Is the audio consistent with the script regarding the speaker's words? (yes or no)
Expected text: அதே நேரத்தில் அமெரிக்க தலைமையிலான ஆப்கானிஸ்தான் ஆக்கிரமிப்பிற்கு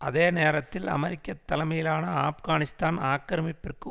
yes